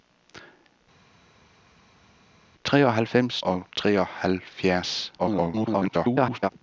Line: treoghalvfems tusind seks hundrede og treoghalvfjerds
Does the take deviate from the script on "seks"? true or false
true